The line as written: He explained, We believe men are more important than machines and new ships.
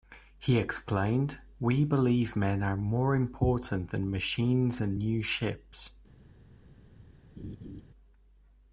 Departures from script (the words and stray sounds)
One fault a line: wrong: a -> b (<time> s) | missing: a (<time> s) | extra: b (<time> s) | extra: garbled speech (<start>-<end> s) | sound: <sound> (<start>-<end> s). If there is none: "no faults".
sound: laugh (7.4-7.8 s)